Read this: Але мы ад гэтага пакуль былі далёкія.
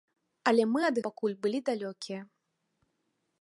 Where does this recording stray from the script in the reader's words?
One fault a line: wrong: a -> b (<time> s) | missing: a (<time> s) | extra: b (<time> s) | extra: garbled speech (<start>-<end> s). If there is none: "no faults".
missing: гэтага (1.0 s)